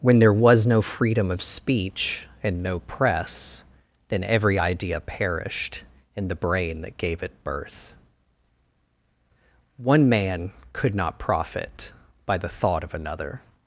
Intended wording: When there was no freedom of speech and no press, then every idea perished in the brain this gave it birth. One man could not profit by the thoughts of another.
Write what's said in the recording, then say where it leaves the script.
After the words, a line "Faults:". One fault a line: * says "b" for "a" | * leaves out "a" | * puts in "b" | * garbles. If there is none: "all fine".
When there was no freedom of speech and no press, then every idea perished in the brain that gave it birth. One man could not profit by the thought of another.
Faults:
* says "that" for "this"
* says "thought" for "thoughts"